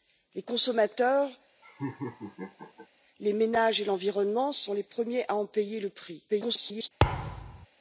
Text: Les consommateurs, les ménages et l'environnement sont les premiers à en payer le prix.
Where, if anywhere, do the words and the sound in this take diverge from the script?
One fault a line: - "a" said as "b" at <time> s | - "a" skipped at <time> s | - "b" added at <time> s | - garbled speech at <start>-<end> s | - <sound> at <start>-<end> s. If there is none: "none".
- laugh at 1.6-2.9 s
- garbled speech at 6.3-6.9 s
- thud at 7.0-7.7 s